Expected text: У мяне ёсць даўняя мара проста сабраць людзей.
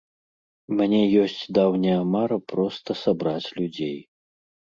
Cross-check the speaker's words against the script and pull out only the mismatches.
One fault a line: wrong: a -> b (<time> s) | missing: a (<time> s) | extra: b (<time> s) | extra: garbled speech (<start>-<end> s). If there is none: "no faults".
no faults